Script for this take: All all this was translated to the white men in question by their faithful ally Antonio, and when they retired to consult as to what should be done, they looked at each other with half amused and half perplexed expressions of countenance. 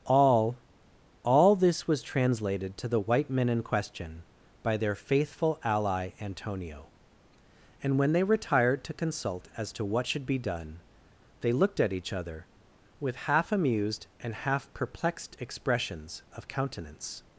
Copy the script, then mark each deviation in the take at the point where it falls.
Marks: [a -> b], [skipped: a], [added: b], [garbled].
All all this was translated to the white men in question by their faithful ally Antonio, and when they retired to consult as to what should be done, they looked at each other with half amused and half perplexed expressions of countenance.